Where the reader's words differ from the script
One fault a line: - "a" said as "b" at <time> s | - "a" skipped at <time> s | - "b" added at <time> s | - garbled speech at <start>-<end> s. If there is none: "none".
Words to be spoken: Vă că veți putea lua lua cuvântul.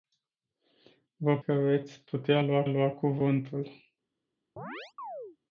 none